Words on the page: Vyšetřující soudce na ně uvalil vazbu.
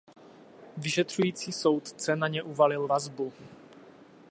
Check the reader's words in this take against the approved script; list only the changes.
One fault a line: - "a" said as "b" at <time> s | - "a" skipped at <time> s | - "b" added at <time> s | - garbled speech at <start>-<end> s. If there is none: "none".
none